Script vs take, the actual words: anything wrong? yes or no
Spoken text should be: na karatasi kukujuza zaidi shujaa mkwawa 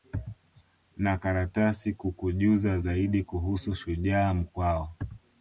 yes